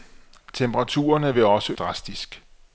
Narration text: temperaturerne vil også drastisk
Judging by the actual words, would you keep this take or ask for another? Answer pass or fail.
pass